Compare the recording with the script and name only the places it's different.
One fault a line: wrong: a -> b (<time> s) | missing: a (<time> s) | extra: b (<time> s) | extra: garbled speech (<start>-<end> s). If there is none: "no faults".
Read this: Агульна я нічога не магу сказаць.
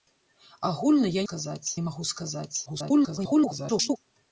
wrong: нічога -> сказаць (1.2 s)
extra: garbled speech (2.7-4.0 s)